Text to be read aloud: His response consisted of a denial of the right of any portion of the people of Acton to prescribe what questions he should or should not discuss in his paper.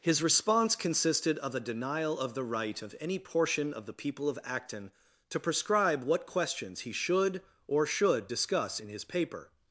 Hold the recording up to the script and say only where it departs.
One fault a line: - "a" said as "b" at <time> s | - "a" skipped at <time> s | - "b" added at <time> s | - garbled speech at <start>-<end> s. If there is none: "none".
- "not" skipped at 8.3 s